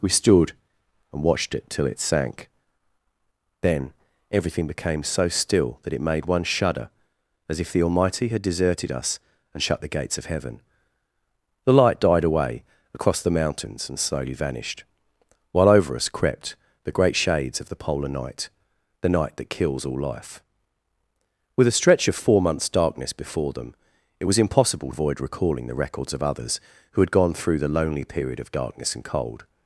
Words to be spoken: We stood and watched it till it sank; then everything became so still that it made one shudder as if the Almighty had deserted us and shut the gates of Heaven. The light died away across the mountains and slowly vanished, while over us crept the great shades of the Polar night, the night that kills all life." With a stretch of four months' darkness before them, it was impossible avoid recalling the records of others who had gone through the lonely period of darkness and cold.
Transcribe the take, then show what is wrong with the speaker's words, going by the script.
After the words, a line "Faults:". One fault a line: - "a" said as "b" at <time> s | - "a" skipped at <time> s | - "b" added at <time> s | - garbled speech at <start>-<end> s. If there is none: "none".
We stood and watched it till it sank; then everything became so still that it made one shudder as if the Almighty had deserted us and shut the gates of Heaven. The light died away across the mountains and slowly vanished, while over us crept the great shades of the Polar night, the night that kills all life." With a stretch of four months' darkness before them, it was impossible avoid recalling the records of others who had gone through the lonely period of darkness and cold.
Faults:
none